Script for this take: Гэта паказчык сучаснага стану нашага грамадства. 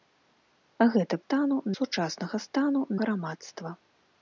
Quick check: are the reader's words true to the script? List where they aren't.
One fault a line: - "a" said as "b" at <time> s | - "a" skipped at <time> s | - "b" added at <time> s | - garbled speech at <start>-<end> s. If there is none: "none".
- "паказчык" said as "стану" at 1.2 s
- "нашага" skipped at 2.9 s